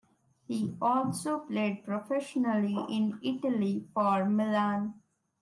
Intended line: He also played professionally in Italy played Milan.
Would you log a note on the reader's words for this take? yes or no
yes